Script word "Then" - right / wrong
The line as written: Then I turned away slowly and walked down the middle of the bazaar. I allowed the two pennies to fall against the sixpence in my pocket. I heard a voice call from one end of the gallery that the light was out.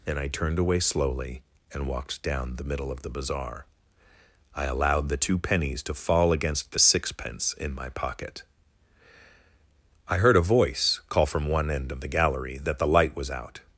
wrong